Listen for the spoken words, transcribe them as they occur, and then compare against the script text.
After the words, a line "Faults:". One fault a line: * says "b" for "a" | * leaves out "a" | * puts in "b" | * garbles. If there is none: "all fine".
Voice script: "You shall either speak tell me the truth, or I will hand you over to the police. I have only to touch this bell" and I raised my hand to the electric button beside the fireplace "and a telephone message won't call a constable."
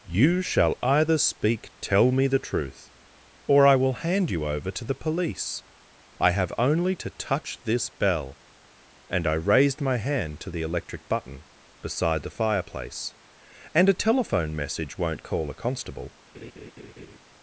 "You shall either speak tell me the truth, or I will hand you over to the police. I have only to touch this bell" and I raised my hand to the electric button beside the fireplace "and a telephone message won't call a constable."
Faults:
all fine